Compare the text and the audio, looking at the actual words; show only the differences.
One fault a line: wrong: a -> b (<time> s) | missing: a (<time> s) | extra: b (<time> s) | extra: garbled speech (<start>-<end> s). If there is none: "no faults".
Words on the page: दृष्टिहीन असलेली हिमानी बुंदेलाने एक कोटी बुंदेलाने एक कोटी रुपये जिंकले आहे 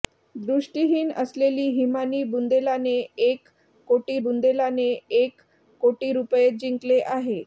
no faults